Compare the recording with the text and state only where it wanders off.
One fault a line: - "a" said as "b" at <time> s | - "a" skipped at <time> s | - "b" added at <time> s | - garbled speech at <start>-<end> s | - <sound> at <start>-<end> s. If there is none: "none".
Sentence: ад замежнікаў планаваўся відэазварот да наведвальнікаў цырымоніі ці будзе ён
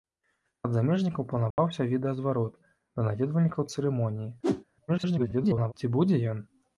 - dropout at 1.5-1.6 s
- whoosh at 4.4-4.6 s
- garbled speech at 4.9-5.7 s